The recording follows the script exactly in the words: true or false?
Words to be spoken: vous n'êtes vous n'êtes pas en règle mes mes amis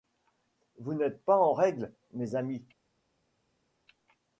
false